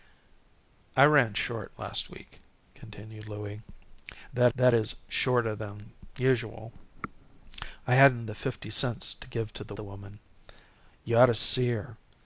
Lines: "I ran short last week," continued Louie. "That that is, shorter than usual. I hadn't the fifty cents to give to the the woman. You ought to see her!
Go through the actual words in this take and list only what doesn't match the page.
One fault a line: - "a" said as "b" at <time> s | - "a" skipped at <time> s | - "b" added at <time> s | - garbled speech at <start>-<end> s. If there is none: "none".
none